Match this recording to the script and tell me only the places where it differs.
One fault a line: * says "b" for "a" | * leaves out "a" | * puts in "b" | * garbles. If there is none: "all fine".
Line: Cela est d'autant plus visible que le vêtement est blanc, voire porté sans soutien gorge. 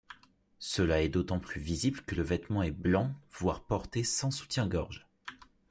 all fine